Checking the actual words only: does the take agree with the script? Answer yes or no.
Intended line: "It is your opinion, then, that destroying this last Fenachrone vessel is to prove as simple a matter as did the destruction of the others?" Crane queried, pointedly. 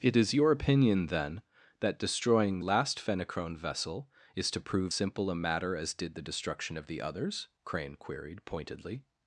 no